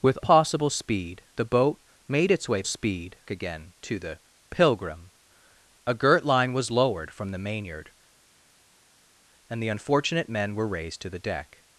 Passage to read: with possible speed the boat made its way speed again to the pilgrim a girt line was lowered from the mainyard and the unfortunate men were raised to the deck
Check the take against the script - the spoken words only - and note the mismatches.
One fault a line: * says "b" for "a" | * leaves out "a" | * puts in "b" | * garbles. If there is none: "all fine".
all fine